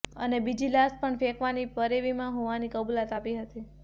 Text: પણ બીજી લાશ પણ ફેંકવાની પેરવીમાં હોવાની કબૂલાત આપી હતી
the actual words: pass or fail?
fail